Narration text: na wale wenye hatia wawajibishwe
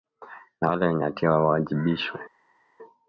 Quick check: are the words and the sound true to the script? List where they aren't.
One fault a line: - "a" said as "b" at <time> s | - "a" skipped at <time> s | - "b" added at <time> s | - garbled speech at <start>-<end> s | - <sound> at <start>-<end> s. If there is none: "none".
none